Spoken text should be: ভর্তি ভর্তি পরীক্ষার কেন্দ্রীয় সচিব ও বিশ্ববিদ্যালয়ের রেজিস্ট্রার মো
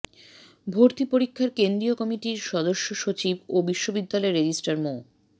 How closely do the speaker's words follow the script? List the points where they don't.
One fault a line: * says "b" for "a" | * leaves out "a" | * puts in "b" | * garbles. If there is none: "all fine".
* leaves out "ভর্তি"
* puts in "কমিটির সদস্য"